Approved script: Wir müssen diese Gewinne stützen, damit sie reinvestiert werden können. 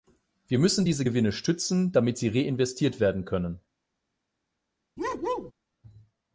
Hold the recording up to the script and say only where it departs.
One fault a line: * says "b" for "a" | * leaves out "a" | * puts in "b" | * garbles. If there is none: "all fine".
all fine